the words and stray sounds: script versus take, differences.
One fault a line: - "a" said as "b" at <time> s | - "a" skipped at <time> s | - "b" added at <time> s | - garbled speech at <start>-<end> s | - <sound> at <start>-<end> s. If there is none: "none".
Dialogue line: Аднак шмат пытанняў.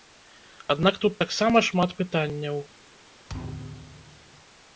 - "тут таксама" added at 1.0 s
- thud at 3.3-4.3 s